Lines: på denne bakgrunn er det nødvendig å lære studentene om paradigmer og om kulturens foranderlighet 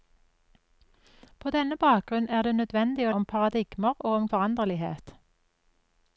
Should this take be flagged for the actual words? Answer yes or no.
yes